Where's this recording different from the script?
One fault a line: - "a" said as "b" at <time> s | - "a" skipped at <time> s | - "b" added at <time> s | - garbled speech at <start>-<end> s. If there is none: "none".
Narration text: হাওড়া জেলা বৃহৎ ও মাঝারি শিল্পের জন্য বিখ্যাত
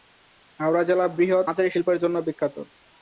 - "ও" skipped at 1.5 s